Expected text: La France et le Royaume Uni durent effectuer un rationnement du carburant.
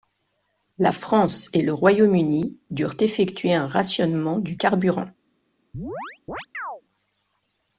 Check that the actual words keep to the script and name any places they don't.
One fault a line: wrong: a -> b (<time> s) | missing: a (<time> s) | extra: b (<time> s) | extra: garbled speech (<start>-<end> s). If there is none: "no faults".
no faults